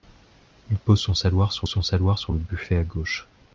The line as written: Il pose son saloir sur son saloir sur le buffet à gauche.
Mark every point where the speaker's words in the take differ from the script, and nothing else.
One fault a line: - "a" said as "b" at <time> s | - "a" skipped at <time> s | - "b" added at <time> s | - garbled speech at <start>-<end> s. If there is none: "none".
none